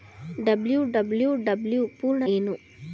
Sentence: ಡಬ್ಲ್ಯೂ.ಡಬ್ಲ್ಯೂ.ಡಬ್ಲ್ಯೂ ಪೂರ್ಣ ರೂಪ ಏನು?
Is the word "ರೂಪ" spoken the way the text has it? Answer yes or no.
no